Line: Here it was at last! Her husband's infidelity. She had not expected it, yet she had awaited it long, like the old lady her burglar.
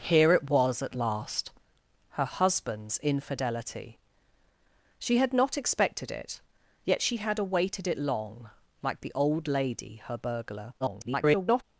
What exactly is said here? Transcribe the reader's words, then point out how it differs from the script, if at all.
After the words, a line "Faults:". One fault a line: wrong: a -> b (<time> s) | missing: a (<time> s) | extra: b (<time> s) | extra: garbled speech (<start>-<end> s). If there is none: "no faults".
Here it was at last! Her husband's infidelity. She had not expected it, yet she had awaited it long, like the old lady her burglar. [garbled]
Faults:
extra: garbled speech (10.8-11.6 s)